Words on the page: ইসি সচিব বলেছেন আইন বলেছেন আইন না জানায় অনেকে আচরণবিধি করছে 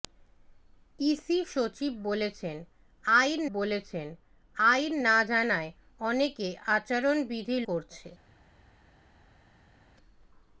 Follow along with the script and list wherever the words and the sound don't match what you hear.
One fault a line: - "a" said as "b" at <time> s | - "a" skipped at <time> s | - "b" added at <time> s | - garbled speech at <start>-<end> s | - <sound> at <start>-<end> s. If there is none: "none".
none